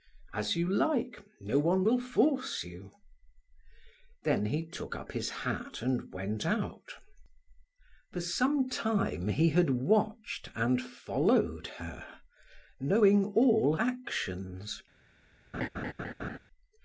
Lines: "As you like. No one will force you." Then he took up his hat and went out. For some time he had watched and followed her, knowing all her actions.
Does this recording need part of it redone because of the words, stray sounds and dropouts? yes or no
yes